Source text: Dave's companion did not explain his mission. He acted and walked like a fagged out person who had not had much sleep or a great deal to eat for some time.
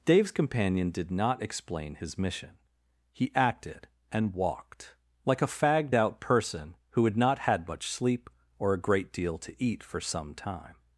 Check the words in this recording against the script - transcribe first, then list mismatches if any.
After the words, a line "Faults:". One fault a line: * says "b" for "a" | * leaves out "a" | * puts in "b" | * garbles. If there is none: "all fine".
Dave's companion did not explain his mission. He acted and walked like a fagged out person who had not had much sleep or a great deal to eat for some time.
Faults:
all fine